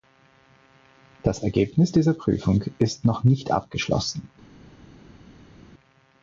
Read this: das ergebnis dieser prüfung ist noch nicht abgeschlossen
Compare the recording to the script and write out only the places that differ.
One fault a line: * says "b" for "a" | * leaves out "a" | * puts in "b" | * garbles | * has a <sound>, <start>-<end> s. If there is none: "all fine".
all fine